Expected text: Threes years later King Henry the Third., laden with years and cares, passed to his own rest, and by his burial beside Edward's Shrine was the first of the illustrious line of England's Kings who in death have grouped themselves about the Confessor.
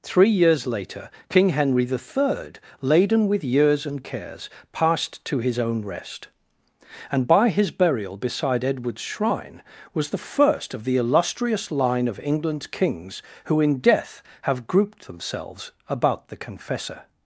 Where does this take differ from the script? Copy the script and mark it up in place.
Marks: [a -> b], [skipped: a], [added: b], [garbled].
[Threes -> Three] years later King Henry the Third., laden with years and cares, passed to his own rest, and by his burial beside Edward's Shrine was the first of the illustrious line of England's Kings who in death have grouped themselves about the Confessor.